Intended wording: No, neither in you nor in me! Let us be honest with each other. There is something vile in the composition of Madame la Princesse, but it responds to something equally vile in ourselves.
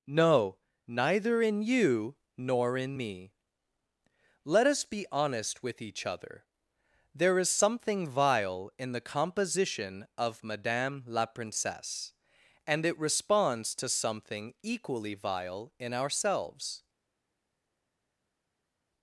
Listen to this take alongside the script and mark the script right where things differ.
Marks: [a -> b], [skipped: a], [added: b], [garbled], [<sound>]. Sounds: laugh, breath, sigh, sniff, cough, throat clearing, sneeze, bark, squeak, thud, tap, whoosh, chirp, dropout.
No, neither in you nor in me! Let us be honest with each other. There is something vile in the composition of Madame la Princesse, [but -> and] it responds to something equally vile in ourselves.